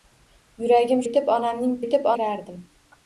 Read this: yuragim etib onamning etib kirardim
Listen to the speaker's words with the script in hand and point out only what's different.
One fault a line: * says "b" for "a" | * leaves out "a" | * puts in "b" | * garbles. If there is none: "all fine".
all fine